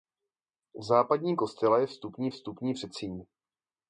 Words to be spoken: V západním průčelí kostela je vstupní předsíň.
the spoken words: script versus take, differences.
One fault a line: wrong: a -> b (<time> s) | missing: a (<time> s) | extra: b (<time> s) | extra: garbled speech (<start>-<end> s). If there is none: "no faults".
missing: průčelí (1.4 s)
extra: vstupní (2.3 s)